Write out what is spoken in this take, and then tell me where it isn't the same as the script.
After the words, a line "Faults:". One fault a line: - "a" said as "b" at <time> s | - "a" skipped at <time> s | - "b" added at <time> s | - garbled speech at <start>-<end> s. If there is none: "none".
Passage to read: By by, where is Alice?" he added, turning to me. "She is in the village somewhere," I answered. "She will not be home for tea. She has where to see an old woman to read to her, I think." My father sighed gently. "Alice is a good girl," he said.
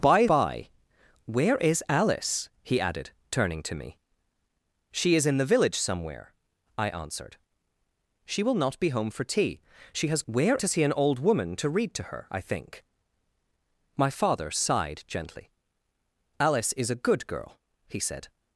By by, where is Alice?" he added, turning to me. "She is in the village somewhere," I answered. "She will not be home for tea. She has where to see an old woman to read to her, I think." My father sighed gently. "Alice is a good girl," he said.
Faults:
none